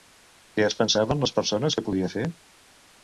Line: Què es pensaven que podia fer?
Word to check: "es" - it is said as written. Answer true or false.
true